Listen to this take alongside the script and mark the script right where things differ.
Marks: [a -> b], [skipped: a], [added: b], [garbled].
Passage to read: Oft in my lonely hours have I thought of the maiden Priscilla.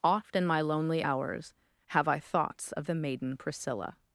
Oft in my lonely hours have I [thought -> thoughts] of the maiden Priscilla.